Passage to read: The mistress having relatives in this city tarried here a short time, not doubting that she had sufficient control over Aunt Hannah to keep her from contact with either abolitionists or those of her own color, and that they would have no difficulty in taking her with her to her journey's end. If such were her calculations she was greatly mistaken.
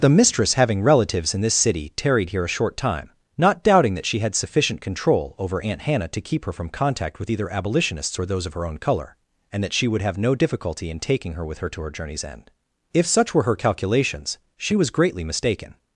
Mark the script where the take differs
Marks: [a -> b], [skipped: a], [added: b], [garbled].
The mistress having relatives in this city tarried here a short time, not doubting that she had sufficient control over Aunt Hannah to keep her from contact with either abolitionists or those of her own color, and that [they -> she] would have no difficulty in taking her with her to her journey's end. If such were her calculations she was greatly mistaken.